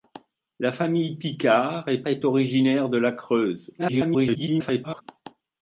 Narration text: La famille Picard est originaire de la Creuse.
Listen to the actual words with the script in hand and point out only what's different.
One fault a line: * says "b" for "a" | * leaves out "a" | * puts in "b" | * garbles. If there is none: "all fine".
* puts in "est"
* garbles